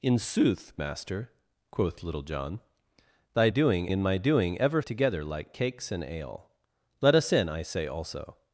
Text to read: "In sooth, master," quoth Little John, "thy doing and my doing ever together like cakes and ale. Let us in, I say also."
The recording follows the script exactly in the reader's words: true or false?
true